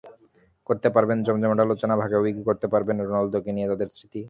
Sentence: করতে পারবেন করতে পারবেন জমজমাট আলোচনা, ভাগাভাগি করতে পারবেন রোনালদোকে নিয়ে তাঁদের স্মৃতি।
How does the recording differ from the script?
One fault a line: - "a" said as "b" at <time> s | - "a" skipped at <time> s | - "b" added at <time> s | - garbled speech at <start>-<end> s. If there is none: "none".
- "করতে পারবেন" skipped at 1.2 s